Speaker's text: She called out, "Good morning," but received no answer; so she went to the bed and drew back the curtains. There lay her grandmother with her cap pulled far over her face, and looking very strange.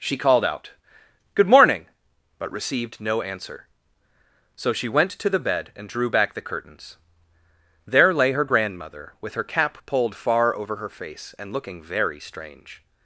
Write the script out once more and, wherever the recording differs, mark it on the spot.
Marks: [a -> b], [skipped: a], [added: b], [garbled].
She called out, "Good morning," but received no answer; so she went to the bed and drew back the curtains. There lay her grandmother with her cap pulled far over her face, and looking very strange.